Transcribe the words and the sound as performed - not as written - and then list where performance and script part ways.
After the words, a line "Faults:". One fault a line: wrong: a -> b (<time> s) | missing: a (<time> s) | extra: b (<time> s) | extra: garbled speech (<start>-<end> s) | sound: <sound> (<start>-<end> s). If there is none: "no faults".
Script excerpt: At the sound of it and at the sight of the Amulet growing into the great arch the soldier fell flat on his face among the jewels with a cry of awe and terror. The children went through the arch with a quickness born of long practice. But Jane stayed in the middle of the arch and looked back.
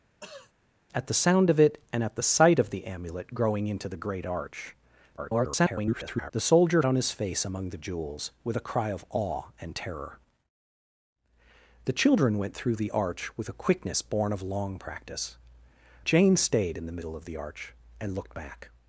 At the sound of it and at the sight of the Amulet growing into the great arch [garbled] the soldier on his face among the jewels with a cry of awe and terror. The children went through the arch with a quickness born of long practice. Jane stayed in the middle of the arch and looked back.
Faults:
sound: throat clearing (0.2-0.5 s)
extra: garbled speech (5.2-6.3 s)
missing: fell flat (6.8 s)
missing: But (15.4 s)